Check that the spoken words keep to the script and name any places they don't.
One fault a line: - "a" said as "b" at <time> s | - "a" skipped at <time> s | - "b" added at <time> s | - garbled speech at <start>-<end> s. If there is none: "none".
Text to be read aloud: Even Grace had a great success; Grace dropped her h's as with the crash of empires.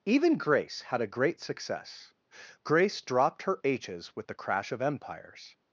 - "as" skipped at 4.2 s